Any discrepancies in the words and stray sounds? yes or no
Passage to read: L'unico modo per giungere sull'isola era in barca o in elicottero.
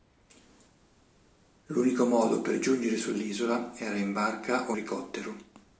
yes